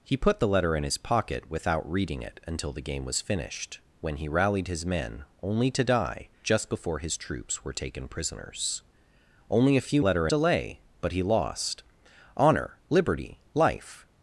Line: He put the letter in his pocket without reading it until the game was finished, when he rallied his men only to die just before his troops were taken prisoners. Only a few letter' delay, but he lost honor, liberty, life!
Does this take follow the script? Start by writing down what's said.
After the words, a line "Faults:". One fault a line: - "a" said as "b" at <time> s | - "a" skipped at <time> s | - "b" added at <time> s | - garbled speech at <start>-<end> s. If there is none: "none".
He put the letter in his pocket without reading it until the game was finished, when he rallied his men only to die just before his troops were taken prisoners. Only a few letter' delay, but he lost honor, liberty, life!
Faults:
none